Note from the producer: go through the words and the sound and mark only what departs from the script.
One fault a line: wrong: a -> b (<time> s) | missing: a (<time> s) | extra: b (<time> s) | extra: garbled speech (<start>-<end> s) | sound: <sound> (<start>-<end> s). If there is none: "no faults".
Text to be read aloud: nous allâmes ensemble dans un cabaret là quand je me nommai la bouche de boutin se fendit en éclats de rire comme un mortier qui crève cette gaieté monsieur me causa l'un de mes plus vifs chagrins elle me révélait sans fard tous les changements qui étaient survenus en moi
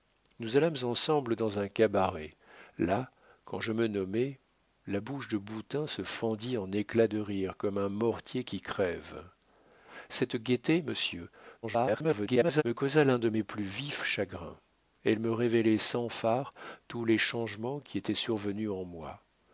extra: garbled speech (11.6-12.6 s)